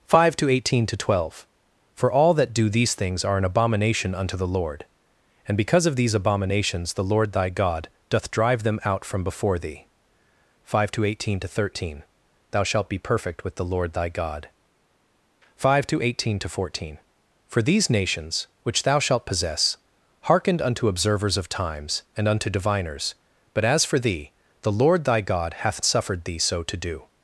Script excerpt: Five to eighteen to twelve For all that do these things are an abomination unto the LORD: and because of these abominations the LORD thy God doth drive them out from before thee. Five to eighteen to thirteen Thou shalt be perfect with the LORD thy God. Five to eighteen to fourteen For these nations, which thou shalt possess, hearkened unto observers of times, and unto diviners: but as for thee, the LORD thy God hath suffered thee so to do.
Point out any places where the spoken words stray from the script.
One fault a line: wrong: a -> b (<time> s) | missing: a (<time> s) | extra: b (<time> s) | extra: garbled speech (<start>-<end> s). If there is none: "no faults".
no faults